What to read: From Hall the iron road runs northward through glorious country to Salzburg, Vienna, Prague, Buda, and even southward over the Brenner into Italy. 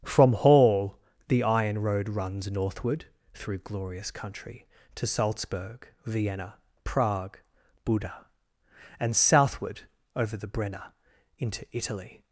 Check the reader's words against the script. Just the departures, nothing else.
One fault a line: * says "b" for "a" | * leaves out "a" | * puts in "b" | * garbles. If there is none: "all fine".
* leaves out "even"